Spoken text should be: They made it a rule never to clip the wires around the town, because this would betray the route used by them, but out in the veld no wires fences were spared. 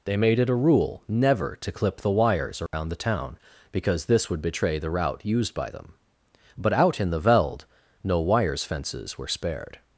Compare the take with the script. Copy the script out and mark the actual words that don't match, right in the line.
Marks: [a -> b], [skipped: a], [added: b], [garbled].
They made it a rule never to clip the wires around the town, because this would betray the route used by them, but out in the veld no wires fences were spared.